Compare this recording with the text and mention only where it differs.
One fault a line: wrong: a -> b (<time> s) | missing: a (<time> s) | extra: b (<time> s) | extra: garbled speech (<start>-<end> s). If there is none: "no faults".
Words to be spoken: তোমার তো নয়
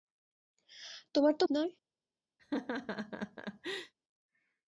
no faults